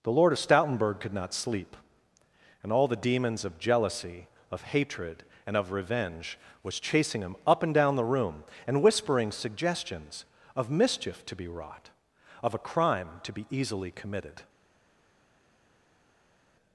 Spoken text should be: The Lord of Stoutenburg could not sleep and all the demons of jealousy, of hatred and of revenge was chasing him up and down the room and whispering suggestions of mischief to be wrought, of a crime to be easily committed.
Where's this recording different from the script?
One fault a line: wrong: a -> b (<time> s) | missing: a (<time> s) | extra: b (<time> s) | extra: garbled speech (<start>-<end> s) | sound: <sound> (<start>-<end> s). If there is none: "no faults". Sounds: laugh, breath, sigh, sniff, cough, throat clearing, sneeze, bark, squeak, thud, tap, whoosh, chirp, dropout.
no faults